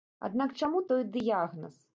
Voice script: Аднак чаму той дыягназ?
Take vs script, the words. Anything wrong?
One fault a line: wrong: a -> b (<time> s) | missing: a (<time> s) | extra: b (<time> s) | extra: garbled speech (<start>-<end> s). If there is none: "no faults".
no faults